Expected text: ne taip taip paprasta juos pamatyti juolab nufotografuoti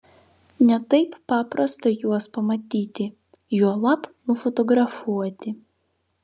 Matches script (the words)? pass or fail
fail